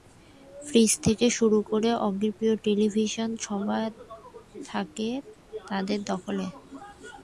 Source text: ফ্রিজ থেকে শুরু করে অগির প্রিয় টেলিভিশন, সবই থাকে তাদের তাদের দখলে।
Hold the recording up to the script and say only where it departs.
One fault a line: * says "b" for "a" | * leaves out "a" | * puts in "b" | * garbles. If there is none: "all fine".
* leaves out "তাদের"